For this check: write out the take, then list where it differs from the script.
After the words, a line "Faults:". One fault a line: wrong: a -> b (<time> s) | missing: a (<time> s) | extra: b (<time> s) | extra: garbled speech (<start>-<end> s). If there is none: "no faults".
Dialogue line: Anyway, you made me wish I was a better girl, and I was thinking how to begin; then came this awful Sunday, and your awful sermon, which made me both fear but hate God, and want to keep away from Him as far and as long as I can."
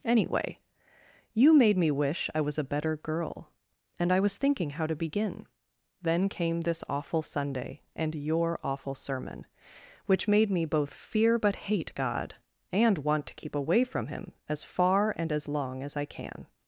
Anyway, you made me wish I was a better girl, and I was thinking how to begin; then came this awful Sunday, and your awful sermon, which made me both fear but hate God, and want to keep away from Him as far and as long as I can."
Faults:
no faults